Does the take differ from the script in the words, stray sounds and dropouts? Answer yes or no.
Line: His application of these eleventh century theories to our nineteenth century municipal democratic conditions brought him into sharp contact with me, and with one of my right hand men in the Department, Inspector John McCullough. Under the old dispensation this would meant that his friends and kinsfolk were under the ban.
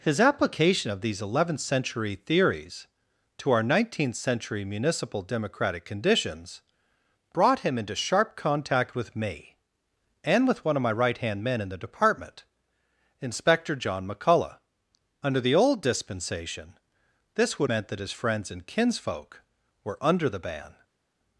no